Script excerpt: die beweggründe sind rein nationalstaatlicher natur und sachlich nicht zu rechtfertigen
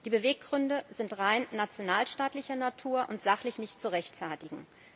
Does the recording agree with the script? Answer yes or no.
yes